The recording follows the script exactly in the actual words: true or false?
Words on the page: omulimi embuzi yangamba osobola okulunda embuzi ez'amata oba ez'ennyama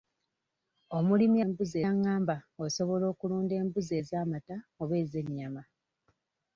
true